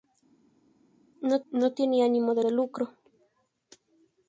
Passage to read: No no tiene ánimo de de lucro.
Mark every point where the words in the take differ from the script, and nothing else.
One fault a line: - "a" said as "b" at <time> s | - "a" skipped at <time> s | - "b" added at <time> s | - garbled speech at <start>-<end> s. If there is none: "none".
none